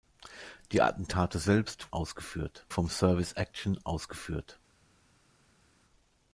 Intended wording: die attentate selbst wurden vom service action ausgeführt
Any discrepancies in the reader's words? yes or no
yes